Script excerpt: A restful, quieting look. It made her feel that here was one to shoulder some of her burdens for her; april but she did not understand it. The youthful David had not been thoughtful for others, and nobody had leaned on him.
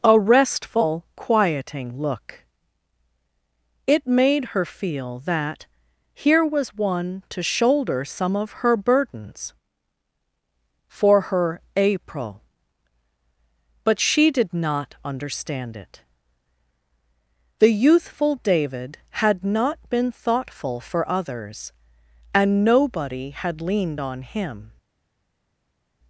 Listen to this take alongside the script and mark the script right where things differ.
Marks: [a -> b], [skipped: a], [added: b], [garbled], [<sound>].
A restful, quieting look. It made her feel that here was one to shoulder some of her burdens for her; april but she did not understand it. The youthful David had not been thoughtful for others, and nobody had leaned on him.